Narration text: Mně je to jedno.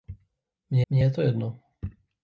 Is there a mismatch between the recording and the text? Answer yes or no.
yes